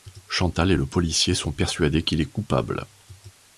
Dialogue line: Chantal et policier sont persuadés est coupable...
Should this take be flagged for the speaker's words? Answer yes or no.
yes